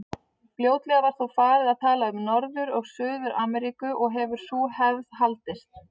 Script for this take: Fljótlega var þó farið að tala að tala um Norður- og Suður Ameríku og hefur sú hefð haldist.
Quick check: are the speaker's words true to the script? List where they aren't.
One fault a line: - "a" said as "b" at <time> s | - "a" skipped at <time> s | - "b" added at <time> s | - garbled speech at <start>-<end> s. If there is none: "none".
- "að tala" skipped at 2.1 s